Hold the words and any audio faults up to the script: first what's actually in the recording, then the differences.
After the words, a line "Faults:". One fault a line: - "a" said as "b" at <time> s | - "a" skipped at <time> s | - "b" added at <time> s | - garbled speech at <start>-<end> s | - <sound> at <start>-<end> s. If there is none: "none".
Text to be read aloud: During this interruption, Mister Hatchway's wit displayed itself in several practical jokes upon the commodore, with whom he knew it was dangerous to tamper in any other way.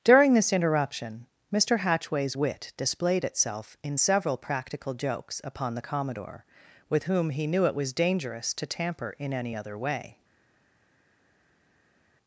During this interruption, Mister Hatchway's wit displayed itself in several practical jokes upon the commodore, with whom he knew it was dangerous to tamper in any other way.
Faults:
none